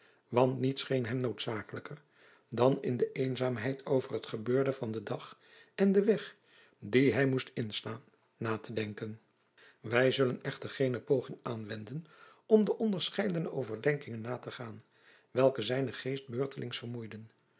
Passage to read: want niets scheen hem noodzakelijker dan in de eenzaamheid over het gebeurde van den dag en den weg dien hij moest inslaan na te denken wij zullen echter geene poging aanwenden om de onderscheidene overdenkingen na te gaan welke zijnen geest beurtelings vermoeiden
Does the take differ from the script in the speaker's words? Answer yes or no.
no